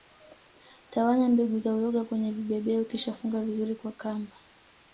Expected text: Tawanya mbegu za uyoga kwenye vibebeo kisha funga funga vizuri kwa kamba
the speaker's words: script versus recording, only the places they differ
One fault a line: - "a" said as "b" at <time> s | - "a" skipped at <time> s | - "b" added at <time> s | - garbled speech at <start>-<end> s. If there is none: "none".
- "funga" skipped at 3.4 s